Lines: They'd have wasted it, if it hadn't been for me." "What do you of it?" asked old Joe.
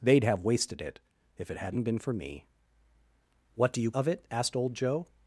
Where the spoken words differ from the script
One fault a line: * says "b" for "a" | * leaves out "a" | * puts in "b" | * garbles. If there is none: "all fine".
all fine